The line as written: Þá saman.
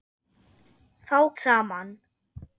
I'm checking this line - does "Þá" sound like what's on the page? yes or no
yes